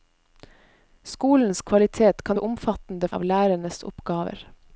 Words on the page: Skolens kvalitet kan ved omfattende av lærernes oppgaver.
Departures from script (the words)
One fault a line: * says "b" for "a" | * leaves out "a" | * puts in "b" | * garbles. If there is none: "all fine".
all fine